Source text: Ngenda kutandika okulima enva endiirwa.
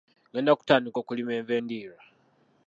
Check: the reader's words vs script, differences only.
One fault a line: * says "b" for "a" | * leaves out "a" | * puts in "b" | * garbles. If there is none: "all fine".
all fine